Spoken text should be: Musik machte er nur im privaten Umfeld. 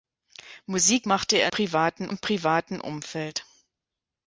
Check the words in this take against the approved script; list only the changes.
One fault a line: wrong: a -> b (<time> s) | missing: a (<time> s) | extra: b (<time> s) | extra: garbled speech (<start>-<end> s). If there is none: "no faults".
wrong: nur -> privaten (1.5 s)